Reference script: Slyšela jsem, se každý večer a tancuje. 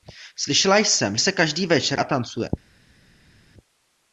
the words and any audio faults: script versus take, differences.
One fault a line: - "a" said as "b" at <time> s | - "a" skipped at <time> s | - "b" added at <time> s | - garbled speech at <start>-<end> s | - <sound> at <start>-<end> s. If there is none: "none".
none